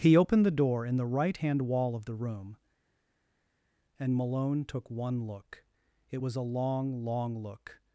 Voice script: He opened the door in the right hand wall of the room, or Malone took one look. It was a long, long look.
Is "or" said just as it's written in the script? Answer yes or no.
no